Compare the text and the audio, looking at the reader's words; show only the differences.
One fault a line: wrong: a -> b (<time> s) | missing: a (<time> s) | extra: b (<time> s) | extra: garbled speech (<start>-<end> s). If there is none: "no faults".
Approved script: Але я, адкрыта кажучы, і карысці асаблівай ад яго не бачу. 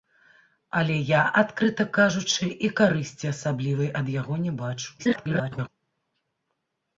extra: garbled speech (5.0-5.7 s)